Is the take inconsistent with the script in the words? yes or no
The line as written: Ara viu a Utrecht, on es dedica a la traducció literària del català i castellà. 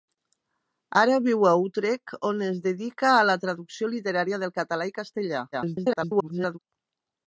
yes